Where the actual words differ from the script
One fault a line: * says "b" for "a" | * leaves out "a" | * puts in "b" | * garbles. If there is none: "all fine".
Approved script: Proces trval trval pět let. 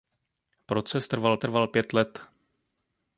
all fine